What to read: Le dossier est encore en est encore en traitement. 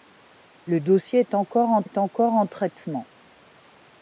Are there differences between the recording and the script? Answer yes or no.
no